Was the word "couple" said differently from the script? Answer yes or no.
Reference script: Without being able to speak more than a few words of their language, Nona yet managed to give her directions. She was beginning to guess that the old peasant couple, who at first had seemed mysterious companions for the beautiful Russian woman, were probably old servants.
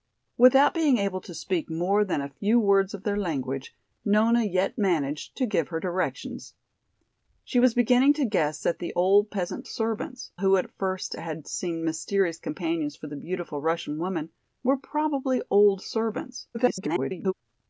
yes